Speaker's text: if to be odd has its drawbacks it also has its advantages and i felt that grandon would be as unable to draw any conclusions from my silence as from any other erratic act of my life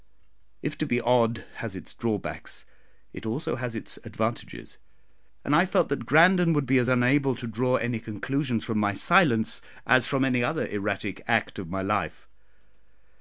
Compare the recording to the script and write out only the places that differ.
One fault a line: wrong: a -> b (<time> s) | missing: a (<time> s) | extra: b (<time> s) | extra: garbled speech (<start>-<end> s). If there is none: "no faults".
no faults